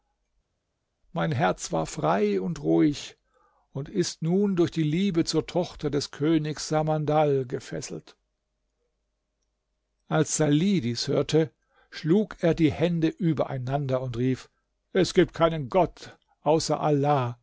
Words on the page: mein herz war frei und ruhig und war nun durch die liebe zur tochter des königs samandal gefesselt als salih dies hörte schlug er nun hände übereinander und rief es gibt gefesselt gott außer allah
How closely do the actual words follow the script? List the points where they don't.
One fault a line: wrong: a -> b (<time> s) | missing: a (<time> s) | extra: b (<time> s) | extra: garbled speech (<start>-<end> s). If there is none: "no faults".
wrong: war -> ist (3.9 s)
wrong: nun -> die (12.5 s)
wrong: gefesselt -> keinen (15.3 s)